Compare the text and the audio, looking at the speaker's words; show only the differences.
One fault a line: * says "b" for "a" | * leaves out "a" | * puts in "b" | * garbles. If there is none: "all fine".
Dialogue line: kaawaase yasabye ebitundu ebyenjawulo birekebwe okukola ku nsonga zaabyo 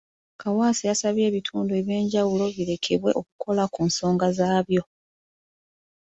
all fine